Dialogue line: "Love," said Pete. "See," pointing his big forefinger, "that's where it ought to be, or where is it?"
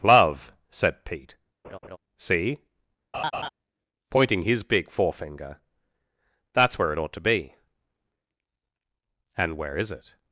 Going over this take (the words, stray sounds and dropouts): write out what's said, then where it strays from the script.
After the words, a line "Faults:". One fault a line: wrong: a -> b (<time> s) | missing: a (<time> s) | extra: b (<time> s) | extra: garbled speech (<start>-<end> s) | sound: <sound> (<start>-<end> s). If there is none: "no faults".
"Love," said Pete. "See," pointing his big forefinger, "that's where it ought to be, and where is it?"
Faults:
sound: laugh (1.6-2.0 s)
sound: laugh (3.1-3.5 s)
wrong: or -> and (9.4 s)